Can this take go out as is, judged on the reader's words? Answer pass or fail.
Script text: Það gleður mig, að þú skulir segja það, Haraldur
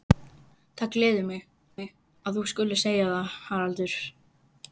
fail